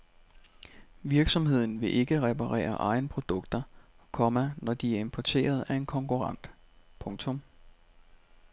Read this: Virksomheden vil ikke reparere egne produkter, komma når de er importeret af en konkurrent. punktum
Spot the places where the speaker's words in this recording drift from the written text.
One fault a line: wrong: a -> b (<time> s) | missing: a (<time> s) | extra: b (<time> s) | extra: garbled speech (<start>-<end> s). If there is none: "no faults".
no faults